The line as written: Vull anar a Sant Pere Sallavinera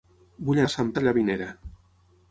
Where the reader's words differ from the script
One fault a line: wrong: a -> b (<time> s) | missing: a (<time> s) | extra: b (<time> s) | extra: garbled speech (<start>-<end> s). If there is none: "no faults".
missing: anar (0.6 s)
missing: Pere (0.9 s)